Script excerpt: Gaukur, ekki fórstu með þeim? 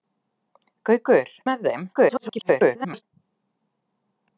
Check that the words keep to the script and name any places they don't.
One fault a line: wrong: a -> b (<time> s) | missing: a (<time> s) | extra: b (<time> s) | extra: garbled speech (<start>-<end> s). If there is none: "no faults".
missing: ekki fórstu (1.3 s)
extra: garbled speech (1.9-3.0 s)